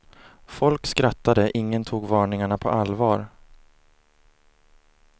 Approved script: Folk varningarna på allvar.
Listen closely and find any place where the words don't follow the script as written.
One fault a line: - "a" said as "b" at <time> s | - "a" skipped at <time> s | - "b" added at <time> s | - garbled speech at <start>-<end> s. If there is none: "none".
- "skrattade ingen tog" added at 0.9 s